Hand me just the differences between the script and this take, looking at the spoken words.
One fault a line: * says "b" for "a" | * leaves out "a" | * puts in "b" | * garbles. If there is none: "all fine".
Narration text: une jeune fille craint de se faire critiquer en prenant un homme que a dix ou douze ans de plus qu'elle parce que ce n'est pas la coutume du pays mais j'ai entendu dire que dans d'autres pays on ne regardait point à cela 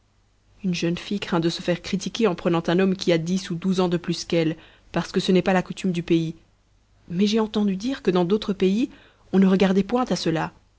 * says "qui" for "que"